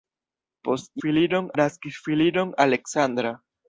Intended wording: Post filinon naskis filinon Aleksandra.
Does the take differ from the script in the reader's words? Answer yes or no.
no